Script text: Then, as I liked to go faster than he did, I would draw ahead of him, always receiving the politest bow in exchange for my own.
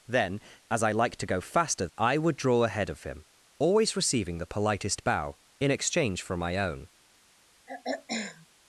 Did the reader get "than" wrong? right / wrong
wrong